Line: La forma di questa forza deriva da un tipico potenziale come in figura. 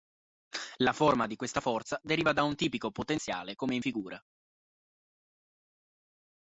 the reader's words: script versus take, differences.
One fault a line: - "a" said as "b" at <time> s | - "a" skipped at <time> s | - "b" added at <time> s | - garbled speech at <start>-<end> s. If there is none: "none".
none